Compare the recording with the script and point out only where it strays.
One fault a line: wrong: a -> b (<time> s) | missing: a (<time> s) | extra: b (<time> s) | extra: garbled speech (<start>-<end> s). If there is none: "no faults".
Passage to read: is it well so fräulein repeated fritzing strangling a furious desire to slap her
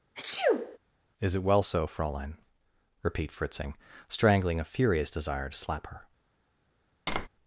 wrong: repeated -> repeat (3.0 s)